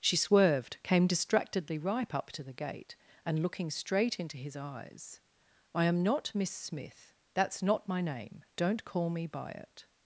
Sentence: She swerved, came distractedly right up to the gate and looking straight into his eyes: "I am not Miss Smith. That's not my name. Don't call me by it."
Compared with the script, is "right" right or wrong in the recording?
wrong